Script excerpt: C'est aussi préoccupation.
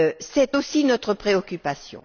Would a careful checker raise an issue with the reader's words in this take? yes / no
yes